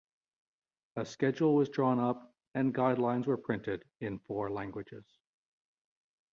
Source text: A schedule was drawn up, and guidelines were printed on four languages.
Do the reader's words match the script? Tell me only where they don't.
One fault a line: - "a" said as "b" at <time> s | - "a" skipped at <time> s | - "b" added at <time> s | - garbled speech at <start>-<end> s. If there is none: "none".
- "on" said as "in" at 4.0 s